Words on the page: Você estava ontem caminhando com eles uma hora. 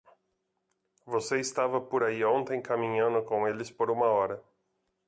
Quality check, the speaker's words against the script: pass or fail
fail